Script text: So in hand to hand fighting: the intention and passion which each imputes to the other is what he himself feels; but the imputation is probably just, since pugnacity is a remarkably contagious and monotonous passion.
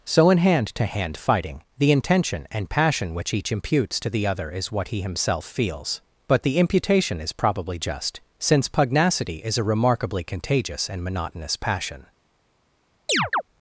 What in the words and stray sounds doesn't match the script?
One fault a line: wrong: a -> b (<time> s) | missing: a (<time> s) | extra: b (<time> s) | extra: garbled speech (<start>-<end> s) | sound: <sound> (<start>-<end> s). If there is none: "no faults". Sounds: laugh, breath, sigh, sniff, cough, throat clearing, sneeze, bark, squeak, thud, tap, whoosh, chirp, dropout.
sound: chirp (13.1-13.4 s)